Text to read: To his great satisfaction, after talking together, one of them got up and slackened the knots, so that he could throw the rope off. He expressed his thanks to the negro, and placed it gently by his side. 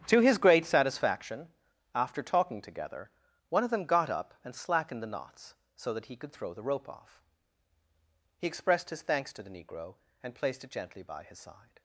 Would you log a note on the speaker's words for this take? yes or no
no